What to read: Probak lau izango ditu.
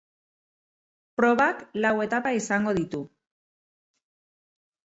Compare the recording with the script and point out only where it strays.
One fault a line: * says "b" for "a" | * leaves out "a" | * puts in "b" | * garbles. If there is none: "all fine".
* puts in "etapa"